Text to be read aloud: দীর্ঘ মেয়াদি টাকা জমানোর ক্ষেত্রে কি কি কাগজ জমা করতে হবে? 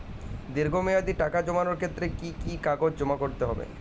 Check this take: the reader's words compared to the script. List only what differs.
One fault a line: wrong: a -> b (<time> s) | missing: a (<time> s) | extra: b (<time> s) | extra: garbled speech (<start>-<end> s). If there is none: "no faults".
no faults